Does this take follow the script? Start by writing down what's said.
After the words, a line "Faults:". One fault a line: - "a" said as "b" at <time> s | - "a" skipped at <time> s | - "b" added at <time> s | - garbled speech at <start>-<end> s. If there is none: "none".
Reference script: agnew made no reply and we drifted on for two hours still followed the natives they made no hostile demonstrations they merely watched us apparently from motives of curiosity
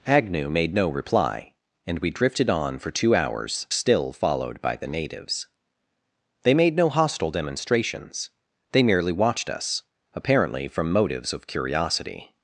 agnew made no reply and we drifted on for two hours still followed by the natives they made no hostile demonstrations they merely watched us apparently from motives of curiosity
Faults:
- "by" added at 4.6 s